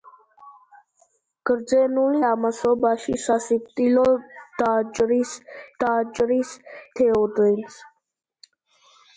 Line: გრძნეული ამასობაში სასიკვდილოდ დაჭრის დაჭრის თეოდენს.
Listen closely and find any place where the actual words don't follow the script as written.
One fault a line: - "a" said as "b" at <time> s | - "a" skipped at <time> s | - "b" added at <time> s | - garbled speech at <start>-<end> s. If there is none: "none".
none